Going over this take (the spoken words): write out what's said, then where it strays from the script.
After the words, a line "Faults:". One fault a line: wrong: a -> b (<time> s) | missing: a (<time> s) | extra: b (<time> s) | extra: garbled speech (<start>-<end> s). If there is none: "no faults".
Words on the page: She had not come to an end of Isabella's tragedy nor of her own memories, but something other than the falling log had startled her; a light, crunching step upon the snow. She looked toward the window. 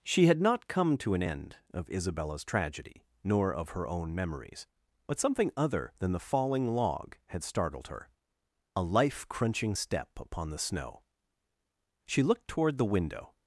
She had not come to an end of Isabella's tragedy nor of her own memories, but something other than the falling log had startled her; a life, crunching step upon the snow. She looked toward the window.
Faults:
wrong: light -> life (8.8 s)